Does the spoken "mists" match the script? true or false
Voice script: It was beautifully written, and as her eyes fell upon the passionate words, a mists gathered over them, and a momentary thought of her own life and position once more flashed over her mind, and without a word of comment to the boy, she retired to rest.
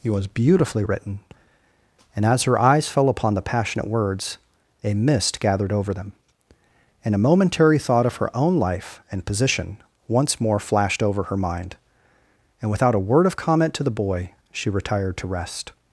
false